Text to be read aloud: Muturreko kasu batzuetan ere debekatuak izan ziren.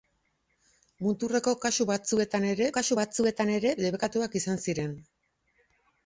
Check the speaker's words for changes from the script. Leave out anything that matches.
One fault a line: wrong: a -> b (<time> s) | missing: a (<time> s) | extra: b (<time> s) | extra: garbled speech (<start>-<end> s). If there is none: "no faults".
extra: kasu batzuetan ere (2.8 s)